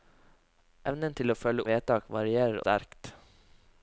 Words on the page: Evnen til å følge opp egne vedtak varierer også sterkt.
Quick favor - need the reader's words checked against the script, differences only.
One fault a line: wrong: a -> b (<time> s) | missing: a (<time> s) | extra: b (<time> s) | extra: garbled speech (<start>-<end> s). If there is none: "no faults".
missing: opp egne (1.6 s)
missing: også (2.6 s)